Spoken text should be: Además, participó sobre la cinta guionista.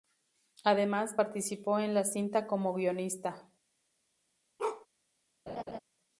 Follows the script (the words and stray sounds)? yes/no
no